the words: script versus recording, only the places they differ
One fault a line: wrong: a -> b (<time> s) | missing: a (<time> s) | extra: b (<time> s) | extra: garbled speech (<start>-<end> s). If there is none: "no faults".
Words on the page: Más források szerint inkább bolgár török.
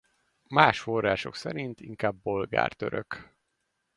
no faults